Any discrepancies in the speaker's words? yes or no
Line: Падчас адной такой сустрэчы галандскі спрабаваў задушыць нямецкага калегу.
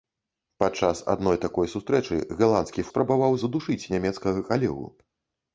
no